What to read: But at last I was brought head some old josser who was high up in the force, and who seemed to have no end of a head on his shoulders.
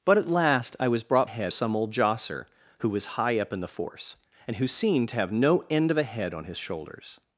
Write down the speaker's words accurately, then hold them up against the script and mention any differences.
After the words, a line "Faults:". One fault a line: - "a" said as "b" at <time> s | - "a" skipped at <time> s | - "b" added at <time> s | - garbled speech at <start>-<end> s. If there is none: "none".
But at last I was brought head some old josser who was high up in the force, and who seemed to have no end of a head on his shoulders.
Faults:
none